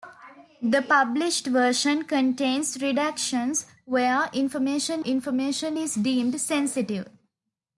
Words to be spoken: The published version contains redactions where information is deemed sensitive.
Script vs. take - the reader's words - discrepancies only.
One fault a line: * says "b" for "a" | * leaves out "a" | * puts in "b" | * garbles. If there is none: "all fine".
* puts in "information"